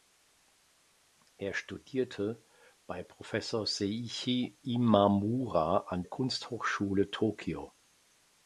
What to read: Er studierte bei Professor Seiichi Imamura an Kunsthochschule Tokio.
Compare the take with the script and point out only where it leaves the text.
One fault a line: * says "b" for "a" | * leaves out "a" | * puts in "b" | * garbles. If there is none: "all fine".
all fine